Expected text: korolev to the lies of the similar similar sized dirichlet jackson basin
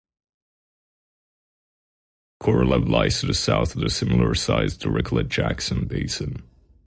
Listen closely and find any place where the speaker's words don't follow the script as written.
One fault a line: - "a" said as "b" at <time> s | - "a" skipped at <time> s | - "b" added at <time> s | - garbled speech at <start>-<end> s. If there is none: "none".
- "lies" added at 2.9 s
- "lies" said as "south" at 3.3 s
- "similar" skipped at 4.3 s